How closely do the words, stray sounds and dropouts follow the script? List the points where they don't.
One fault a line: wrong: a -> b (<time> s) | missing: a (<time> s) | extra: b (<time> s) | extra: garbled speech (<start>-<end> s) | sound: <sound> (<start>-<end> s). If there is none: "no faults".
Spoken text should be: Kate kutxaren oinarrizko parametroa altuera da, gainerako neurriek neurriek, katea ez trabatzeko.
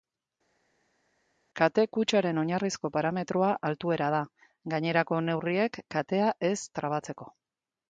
missing: neurriek (5.8 s)